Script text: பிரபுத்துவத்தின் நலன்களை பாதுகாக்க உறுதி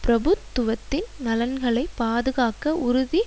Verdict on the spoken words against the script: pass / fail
pass